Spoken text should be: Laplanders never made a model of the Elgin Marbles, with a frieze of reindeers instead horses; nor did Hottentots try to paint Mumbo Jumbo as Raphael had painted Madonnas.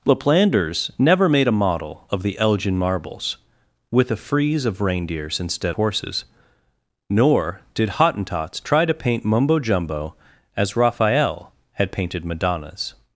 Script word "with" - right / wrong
right